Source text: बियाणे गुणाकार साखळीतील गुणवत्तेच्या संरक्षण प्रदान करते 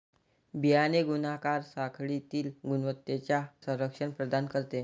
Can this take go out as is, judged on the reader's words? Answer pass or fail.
pass